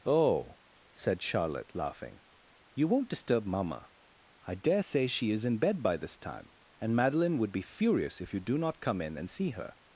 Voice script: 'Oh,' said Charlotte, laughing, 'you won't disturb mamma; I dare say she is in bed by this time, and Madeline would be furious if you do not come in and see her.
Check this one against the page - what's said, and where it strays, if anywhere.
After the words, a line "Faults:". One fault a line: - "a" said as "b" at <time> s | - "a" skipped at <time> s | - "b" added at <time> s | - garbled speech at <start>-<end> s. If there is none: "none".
'Oh,' said Charlotte, laughing, 'you won't disturb mamma; I dare say she is in bed by this time, and Madeline would be furious if you do not come in and see her.
Faults:
none